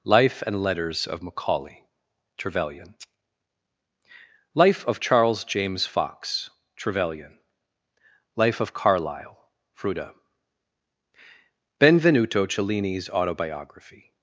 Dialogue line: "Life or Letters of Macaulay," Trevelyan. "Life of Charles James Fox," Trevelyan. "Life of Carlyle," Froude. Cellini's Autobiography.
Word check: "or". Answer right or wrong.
wrong